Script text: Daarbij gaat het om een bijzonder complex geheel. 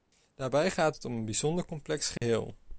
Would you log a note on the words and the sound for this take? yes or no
yes